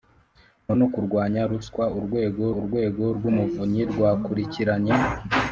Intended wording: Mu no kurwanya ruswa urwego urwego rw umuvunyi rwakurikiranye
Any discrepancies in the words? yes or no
no